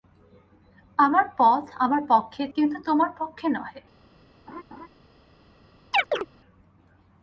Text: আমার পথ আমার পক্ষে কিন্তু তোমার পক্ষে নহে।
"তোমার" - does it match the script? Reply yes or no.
yes